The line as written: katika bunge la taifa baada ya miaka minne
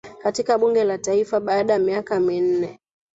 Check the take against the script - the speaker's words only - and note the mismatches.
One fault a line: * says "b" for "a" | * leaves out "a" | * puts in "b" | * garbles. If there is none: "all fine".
all fine